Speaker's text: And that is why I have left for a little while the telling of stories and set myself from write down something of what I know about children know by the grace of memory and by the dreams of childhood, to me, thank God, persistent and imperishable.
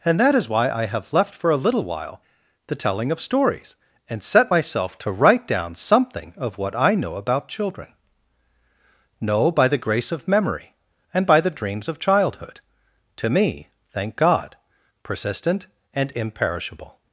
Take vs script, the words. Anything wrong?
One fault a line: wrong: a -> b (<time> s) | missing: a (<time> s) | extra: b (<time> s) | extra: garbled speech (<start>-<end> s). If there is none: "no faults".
wrong: from -> to (5.0 s)